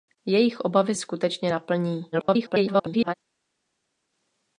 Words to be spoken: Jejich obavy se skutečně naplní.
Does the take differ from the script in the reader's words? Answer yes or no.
yes